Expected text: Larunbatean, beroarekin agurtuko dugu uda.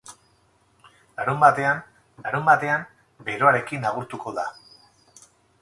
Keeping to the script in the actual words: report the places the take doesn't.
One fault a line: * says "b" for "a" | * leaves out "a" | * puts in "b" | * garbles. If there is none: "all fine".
* puts in "larunbatean"
* leaves out "dugu"